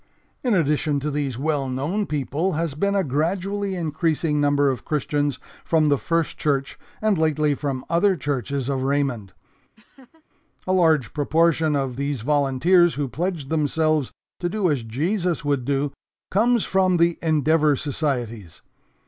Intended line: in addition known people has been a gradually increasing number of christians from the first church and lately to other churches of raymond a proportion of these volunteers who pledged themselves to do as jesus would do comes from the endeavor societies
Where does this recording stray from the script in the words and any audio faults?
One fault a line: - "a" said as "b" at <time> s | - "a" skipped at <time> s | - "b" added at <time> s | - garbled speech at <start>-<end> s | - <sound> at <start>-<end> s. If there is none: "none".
- "to these well" added at 1.0 s
- "to" said as "from" at 7.5 s
- laugh at 9.8-10.2 s
- "large" added at 10.7 s